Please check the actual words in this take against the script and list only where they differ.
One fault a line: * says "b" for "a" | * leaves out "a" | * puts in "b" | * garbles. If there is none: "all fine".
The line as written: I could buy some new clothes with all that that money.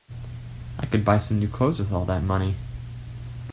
* leaves out "that"